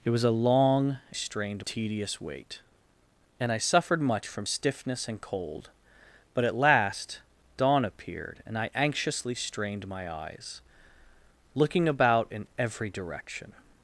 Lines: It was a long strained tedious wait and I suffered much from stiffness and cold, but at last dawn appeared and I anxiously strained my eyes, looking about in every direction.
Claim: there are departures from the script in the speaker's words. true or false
false